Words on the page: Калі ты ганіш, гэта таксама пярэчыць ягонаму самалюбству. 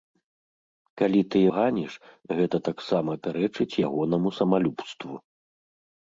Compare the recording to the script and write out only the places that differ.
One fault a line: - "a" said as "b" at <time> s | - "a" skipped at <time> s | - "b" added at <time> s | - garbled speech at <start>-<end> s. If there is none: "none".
none